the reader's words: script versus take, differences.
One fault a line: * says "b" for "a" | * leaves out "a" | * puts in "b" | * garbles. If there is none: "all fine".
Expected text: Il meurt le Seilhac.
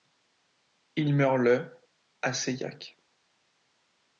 * puts in "à"